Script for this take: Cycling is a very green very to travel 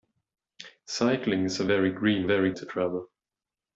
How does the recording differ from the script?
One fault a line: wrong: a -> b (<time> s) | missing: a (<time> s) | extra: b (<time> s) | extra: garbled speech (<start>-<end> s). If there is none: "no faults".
no faults